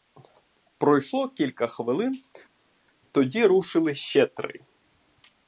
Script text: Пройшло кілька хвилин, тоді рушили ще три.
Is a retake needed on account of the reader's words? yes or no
no